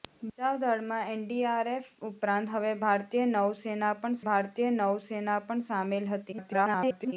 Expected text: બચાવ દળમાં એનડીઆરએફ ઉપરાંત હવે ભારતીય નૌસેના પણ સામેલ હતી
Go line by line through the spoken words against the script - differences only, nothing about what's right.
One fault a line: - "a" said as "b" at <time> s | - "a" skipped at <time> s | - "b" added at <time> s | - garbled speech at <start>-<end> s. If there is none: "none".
- "ભારતીય નૌસેના પણ" added at 4.3 s
- garbled speech at 6.3-7.1 s